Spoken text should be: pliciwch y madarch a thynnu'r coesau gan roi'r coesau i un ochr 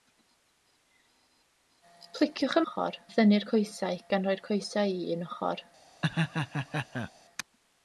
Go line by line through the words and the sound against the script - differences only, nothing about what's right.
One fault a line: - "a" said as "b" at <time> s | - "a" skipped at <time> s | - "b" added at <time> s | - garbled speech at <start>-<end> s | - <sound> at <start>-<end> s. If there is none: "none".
- "madarch" said as "ochr" at 2.7 s
- laugh at 6.0-7.1 s